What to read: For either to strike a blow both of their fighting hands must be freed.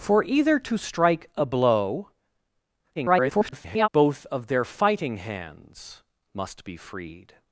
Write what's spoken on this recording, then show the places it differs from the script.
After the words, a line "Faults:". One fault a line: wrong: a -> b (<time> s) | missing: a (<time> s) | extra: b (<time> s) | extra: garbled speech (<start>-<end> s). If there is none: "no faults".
For either to strike a blow [garbled] both of their fighting hands must be freed.
Faults:
extra: garbled speech (2.9-3.9 s)